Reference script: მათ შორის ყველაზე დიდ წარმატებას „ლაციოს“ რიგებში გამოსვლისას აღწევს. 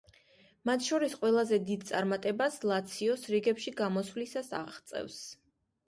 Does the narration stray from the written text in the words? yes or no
no